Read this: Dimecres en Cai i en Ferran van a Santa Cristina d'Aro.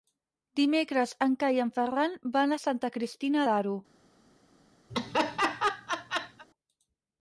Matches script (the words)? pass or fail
pass